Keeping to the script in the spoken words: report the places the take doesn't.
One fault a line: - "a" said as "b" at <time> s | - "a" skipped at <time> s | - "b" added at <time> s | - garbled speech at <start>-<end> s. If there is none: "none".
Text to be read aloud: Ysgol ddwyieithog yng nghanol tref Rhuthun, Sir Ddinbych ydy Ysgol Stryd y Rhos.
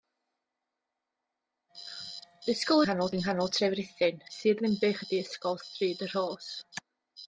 - "ddwyieithog" said as "nghanol" at 2.8 s